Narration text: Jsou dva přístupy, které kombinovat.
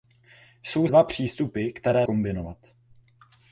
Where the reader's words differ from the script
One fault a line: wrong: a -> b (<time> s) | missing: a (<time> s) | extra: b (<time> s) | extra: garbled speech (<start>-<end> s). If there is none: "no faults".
no faults